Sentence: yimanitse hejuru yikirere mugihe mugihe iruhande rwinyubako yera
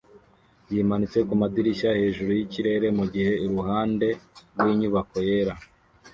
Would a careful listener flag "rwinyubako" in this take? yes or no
no